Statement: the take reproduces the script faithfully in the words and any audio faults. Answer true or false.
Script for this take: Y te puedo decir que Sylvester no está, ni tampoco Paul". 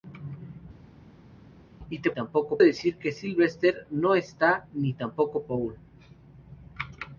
false